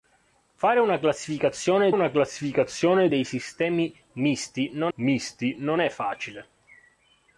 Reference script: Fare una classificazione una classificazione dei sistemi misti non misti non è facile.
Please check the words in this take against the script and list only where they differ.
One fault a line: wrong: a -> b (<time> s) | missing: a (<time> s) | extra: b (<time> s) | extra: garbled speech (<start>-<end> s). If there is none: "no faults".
no faults